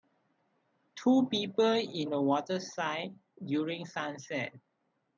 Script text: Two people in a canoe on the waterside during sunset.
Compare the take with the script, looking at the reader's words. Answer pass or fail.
fail